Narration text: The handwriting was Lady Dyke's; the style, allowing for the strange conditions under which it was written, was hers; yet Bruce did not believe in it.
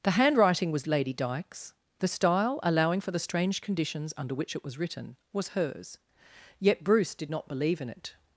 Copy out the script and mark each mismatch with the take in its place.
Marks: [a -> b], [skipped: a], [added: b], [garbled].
The handwriting was Lady Dyke's; the style, allowing for the strange conditions under which it was written, was hers; yet Bruce did not believe in it.